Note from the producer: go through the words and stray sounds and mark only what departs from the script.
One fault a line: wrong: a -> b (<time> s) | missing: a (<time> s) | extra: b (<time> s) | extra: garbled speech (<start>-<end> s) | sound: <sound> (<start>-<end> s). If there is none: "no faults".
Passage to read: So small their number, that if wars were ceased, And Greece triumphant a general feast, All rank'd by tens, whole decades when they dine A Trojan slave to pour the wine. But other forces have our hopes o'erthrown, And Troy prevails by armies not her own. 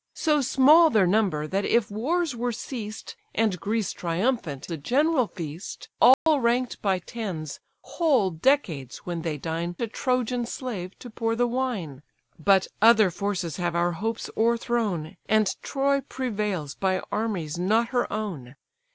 sound: dropout (6.1-6.3 s)